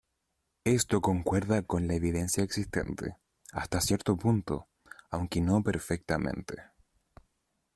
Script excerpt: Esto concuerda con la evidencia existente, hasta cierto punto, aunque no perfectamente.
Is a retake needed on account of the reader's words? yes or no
no